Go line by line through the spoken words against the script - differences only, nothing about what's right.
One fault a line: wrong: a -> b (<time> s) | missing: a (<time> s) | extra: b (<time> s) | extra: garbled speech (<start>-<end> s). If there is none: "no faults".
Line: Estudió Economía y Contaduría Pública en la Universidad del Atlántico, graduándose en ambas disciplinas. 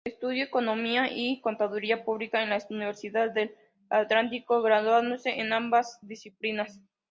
no faults